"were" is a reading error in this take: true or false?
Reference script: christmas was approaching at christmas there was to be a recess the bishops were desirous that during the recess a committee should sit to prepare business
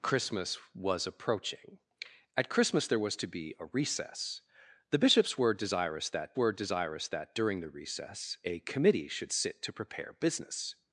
false